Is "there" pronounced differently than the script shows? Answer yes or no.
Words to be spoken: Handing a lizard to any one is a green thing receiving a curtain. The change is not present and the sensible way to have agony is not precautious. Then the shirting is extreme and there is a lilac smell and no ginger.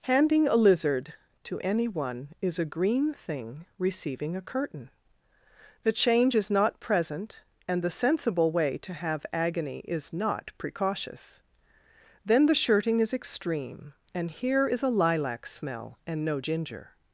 yes